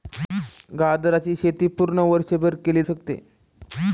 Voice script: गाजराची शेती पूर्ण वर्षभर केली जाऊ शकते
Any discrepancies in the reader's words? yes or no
yes